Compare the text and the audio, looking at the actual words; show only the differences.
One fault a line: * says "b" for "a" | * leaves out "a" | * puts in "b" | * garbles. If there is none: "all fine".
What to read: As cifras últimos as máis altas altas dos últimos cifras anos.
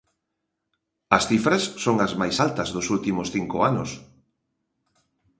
* says "son" for "últimos"
* leaves out "altas"
* says "cinco" for "cifras"